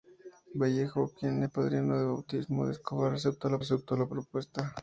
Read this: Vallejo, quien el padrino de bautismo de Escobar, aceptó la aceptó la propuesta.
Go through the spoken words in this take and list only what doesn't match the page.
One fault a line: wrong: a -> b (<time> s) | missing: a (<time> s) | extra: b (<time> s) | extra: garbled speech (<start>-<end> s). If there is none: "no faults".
no faults